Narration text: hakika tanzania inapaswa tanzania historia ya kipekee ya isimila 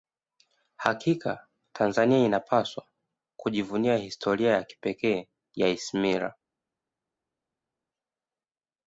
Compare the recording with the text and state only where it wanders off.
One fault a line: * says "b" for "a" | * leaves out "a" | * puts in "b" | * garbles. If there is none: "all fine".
* says "kujivunia" for "tanzania"